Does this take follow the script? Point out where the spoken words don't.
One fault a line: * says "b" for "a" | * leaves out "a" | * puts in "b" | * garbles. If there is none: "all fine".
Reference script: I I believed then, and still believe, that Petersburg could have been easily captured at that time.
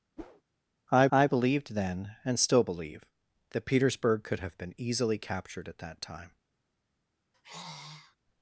all fine